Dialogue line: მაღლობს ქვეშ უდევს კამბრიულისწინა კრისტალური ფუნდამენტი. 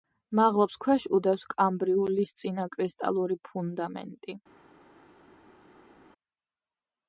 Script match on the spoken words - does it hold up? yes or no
yes